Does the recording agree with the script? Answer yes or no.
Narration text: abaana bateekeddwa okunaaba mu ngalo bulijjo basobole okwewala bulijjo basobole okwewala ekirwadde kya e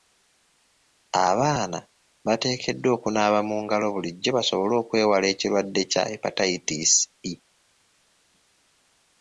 no